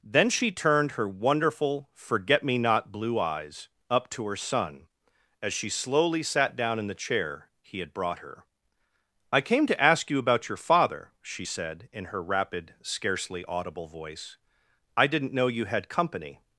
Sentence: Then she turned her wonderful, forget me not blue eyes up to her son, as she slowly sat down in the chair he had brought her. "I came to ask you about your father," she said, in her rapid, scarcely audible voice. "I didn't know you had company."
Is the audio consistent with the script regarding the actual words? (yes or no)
yes